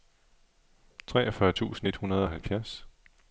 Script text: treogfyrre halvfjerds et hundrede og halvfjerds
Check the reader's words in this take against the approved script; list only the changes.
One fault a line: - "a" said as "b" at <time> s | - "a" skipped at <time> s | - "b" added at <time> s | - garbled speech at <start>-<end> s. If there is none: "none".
- "halvfjerds" said as "tusind" at 1.5 s